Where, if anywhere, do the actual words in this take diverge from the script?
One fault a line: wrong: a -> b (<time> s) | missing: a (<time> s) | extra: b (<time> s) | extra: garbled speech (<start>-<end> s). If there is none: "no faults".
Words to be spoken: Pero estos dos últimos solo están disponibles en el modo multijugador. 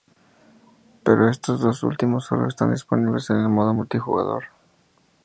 no faults